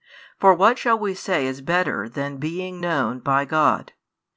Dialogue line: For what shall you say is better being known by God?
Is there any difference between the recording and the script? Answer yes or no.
yes